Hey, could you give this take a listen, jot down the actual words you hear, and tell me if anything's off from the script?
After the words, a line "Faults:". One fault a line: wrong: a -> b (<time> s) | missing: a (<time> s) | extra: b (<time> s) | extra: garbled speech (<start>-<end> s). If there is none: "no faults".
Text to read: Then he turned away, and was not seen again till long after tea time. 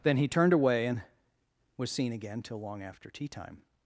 Then he turned away, and was seen again till long after tea time.
Faults:
missing: not (1.9 s)